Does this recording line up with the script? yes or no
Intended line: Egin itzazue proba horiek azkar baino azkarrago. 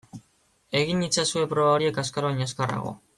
yes